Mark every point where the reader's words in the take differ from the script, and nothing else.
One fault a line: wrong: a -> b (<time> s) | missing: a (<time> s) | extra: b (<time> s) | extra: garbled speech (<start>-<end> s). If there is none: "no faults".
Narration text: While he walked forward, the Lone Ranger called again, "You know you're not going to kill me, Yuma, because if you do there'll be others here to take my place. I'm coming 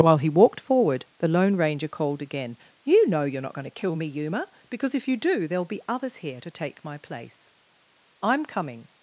no faults